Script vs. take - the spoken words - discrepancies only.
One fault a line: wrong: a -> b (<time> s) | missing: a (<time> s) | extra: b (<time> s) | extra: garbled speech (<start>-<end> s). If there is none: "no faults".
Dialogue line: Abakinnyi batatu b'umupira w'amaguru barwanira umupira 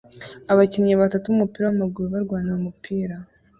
no faults